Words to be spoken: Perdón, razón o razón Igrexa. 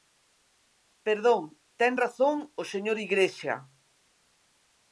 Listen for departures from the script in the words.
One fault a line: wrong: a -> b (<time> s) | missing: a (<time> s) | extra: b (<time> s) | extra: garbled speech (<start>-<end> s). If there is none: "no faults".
extra: ten (1.8 s)
wrong: razón -> señor (2.7 s)